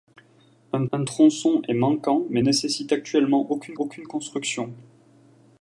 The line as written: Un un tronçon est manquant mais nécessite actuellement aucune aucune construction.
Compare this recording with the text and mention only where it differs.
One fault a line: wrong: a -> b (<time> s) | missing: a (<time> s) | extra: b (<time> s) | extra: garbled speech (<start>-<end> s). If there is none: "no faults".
no faults